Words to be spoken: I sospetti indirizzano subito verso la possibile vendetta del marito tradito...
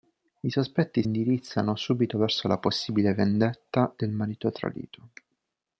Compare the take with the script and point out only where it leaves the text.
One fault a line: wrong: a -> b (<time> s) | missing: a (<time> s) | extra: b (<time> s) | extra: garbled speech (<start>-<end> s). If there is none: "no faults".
no faults